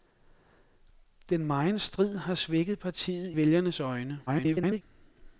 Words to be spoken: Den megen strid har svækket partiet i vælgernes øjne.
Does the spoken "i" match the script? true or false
false